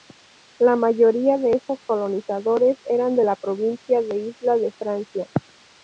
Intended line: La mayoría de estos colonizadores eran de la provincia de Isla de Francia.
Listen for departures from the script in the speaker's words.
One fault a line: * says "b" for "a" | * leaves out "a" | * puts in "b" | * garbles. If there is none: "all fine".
all fine